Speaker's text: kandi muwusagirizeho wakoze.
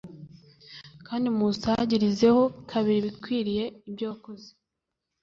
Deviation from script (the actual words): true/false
true